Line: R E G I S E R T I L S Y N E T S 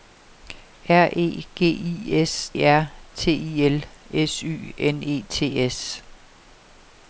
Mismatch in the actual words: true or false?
false